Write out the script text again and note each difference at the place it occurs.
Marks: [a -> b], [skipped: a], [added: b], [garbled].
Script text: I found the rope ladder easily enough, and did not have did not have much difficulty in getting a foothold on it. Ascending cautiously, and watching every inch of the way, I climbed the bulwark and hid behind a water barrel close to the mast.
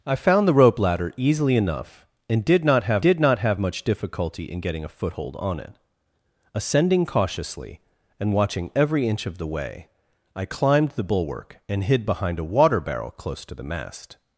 I found the rope ladder easily enough, and did not have did not have much difficulty in getting a foothold on it. Ascending cautiously, and watching every inch of the way, I climbed the bulwark and hid behind a water barrel close to the mast.